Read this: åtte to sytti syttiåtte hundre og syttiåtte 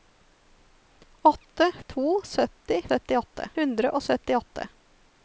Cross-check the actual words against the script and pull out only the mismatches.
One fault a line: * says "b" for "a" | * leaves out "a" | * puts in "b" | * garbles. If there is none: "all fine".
all fine